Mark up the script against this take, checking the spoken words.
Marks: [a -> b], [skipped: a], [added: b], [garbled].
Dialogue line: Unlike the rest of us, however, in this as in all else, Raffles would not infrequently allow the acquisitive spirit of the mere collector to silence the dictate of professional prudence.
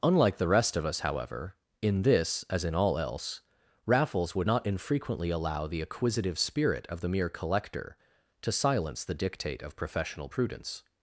Unlike the rest of us, however, in this as in all else, Raffles would not infrequently allow the acquisitive spirit of the mere collector to silence the dictate of professional prudence.